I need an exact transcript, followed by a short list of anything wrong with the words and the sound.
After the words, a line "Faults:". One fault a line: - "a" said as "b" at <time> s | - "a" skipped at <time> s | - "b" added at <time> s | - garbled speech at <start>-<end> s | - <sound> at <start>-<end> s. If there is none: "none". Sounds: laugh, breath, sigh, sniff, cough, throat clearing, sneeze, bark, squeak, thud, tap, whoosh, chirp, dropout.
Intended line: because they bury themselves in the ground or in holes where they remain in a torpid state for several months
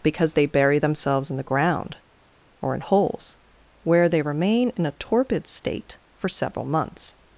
because they bury themselves in the ground or in holes where they remain in a torpid state for several months
Faults:
none